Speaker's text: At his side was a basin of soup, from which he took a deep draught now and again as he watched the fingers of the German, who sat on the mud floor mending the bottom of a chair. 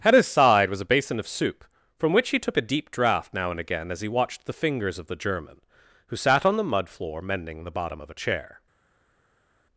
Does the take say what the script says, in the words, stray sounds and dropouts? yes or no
yes